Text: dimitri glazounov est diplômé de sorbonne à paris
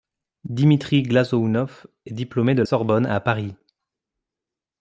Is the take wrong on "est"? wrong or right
right